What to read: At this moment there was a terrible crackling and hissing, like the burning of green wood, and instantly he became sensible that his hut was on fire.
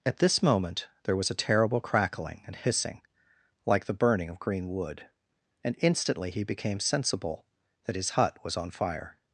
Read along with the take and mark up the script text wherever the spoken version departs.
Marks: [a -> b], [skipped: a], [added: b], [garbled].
At this moment there was a terrible crackling and hissing, like the burning of green wood, and instantly he became sensible that his hut was on fire.